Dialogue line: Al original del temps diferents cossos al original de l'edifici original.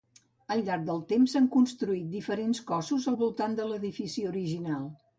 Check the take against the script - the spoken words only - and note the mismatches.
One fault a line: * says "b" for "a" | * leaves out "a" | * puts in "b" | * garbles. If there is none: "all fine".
* says "llarg" for "original"
* puts in "s'han construït"
* says "voltant" for "original"